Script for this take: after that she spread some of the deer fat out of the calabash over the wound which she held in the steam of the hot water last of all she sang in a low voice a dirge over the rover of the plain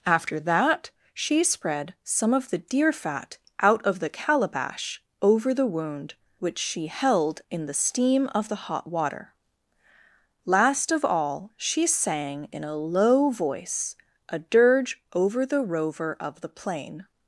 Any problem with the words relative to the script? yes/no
no